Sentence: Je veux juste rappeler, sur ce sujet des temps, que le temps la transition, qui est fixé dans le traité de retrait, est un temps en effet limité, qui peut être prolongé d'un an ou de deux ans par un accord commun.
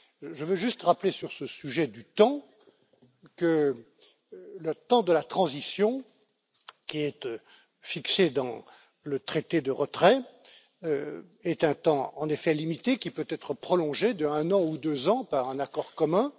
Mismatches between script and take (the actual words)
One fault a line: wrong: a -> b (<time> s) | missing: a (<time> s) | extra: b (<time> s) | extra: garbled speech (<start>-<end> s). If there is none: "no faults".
wrong: des -> du (1.9 s)
extra: de (5.0 s)